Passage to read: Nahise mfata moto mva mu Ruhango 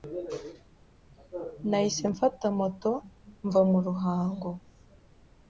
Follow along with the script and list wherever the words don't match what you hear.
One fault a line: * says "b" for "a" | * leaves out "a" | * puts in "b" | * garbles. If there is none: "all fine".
all fine